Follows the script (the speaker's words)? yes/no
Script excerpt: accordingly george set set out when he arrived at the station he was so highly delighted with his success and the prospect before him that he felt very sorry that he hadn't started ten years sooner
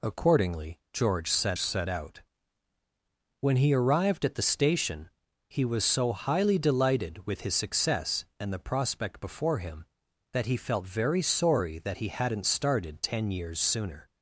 yes